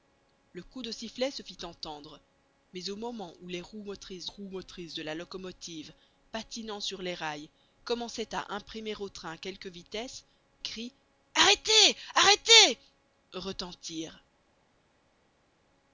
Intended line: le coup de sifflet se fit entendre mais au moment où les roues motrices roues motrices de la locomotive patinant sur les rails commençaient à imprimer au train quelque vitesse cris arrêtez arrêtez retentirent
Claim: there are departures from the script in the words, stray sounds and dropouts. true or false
false